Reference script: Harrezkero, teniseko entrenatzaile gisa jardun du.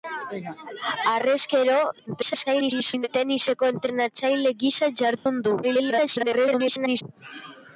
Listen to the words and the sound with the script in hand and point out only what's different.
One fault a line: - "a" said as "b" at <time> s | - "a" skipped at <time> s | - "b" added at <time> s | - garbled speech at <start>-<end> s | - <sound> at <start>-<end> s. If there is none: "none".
- garbled speech at 2.1-3.1 s
- dropout at 5.2-5.3 s
- garbled speech at 5.6-7.0 s